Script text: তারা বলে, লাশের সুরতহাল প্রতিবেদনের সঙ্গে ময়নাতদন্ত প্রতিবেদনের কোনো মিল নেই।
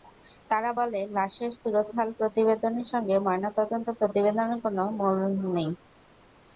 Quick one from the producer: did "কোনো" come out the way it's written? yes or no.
yes